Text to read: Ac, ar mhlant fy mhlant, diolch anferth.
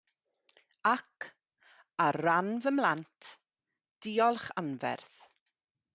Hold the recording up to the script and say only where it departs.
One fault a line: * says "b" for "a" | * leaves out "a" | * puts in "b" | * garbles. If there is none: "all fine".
* says "ran" for "mhlant"